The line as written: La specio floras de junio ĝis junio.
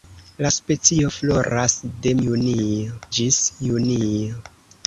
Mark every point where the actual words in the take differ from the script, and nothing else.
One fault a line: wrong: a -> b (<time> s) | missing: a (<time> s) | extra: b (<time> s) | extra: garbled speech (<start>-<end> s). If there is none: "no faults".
no faults